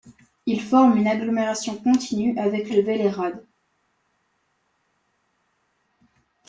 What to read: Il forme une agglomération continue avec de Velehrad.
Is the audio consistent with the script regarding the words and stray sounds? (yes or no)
yes